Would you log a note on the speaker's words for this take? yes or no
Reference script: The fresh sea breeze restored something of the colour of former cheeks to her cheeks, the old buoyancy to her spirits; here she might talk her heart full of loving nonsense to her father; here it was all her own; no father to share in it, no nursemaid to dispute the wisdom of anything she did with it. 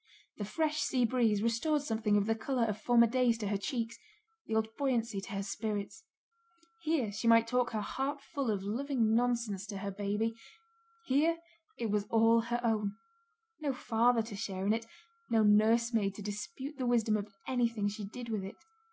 yes